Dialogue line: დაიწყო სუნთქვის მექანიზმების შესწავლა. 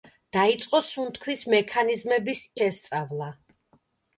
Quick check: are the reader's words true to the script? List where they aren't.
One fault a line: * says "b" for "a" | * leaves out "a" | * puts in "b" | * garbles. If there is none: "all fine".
all fine